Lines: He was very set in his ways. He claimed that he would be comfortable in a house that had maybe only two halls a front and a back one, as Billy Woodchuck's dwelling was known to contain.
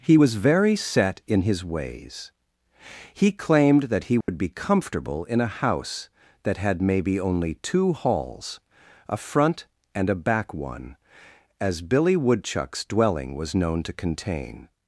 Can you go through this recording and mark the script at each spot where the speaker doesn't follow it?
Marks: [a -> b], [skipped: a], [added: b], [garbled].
He was very set in his ways. He claimed that he would be comfortable in a house that had maybe only two halls a front and a back one, as Billy Woodchuck's dwelling was known to contain.